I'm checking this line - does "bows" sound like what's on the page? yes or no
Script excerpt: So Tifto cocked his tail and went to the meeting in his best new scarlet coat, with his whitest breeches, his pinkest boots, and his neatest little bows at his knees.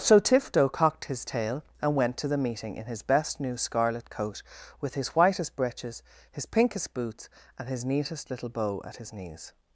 no